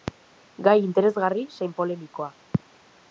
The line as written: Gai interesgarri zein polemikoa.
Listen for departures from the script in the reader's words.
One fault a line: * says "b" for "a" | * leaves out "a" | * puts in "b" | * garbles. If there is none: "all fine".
all fine